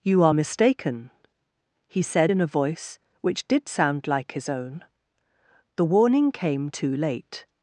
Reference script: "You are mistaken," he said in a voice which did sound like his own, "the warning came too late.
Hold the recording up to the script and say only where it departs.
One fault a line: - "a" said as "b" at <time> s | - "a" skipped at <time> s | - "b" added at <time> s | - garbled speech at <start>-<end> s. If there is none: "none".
none